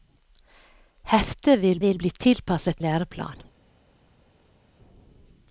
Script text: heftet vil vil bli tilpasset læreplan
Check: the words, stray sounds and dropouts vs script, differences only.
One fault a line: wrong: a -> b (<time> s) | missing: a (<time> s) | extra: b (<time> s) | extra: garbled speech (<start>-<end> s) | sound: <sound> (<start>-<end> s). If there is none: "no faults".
no faults